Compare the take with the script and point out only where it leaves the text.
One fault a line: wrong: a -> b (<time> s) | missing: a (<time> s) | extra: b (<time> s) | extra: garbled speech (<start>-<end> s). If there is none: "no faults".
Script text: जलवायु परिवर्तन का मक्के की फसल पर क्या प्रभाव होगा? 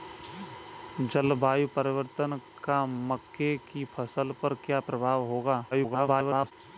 extra: garbled speech (5.7-6.5 s)